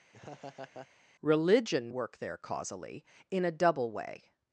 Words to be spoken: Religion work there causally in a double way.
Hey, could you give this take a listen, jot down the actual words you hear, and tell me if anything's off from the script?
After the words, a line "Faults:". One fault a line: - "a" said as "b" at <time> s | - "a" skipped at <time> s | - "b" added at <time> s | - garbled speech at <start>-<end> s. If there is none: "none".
Religion work there causally in a double way.
Faults:
none